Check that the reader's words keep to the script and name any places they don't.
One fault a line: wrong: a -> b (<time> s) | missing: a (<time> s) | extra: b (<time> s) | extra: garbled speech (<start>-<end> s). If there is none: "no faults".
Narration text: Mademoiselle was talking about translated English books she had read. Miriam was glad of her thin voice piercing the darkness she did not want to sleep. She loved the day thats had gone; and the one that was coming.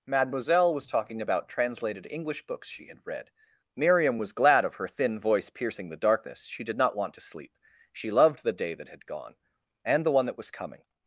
wrong: thats -> that (8.7 s)